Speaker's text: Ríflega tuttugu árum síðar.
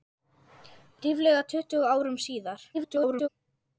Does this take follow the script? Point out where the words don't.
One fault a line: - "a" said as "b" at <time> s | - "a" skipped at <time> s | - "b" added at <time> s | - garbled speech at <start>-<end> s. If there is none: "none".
- garbled speech at 2.7-3.3 s